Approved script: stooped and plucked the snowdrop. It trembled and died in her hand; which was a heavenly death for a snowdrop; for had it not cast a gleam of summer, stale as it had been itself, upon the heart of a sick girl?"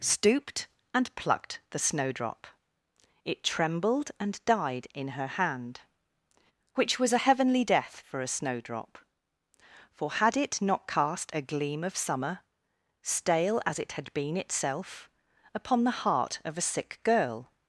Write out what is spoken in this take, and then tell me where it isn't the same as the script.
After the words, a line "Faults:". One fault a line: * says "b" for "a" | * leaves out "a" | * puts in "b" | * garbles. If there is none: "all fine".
stooped and plucked the snowdrop. It trembled and died in her hand; which was a heavenly death for a snowdrop; for had it not cast a gleam of summer, stale as it had been itself, upon the heart of a sick girl?"
Faults:
all fine